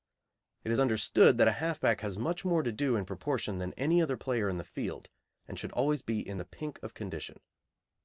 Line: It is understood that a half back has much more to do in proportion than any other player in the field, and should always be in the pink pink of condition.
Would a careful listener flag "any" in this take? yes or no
no